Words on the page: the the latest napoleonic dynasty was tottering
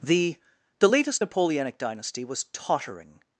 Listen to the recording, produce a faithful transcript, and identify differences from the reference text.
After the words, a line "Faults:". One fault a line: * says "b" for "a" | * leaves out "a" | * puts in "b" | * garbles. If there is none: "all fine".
the the latest napoleonic dynasty was tottering
Faults:
all fine